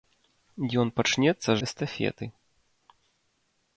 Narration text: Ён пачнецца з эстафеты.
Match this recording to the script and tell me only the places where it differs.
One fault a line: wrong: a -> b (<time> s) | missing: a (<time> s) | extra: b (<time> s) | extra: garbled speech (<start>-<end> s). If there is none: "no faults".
no faults